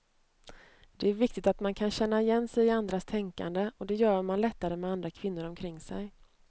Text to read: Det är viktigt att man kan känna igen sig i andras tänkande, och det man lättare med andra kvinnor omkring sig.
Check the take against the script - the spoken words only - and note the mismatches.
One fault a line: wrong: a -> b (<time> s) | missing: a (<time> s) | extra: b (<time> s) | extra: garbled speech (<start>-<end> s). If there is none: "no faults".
extra: gör (4.0 s)